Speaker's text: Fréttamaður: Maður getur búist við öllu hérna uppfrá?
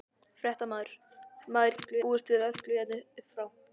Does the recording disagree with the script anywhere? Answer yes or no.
yes